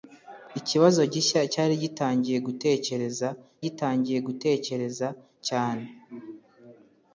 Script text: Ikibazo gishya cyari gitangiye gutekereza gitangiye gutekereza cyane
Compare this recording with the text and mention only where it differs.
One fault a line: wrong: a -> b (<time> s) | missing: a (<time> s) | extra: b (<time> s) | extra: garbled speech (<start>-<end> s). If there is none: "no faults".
no faults